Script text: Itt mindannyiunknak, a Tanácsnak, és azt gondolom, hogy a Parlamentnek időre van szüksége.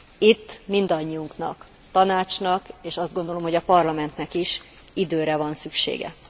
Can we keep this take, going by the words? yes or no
no